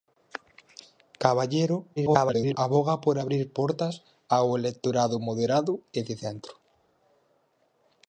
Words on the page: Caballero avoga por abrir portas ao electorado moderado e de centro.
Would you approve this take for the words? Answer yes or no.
no